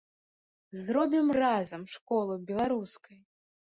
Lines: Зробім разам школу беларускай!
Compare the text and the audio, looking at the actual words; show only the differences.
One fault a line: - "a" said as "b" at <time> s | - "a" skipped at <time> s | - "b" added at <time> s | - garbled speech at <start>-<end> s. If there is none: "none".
none